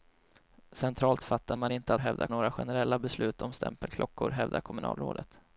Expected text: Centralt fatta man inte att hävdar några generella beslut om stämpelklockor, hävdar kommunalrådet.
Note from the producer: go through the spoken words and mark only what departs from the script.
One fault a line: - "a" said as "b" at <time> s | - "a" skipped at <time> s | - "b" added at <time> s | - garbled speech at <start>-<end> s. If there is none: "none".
none